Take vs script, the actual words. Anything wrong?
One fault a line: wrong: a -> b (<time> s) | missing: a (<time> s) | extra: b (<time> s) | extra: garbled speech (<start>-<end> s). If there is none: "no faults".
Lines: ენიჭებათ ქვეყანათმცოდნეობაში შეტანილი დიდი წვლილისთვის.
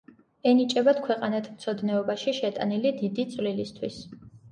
no faults